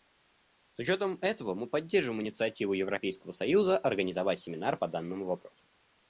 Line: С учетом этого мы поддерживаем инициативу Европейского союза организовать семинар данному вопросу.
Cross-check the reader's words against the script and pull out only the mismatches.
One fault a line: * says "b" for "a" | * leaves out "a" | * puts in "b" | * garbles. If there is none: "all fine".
* puts in "по"